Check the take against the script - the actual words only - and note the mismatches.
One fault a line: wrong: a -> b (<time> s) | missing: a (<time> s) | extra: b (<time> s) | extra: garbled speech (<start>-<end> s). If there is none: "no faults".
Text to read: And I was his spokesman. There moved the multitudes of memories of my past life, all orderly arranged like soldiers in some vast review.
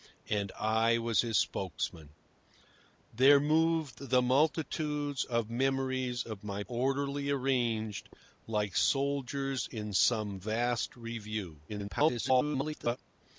missing: past life all (6.6 s)
extra: garbled speech (11.7-13.0 s)